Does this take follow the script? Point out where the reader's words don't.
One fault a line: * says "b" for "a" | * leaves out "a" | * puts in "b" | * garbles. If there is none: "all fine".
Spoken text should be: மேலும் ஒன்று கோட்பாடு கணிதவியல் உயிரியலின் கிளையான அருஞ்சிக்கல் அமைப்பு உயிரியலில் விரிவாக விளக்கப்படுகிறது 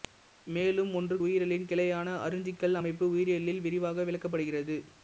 * leaves out "கோட்பாடு கணிதவியல்"